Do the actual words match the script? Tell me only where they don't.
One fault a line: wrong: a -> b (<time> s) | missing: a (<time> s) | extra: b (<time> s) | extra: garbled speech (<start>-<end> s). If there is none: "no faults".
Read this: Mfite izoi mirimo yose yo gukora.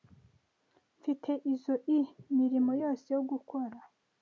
no faults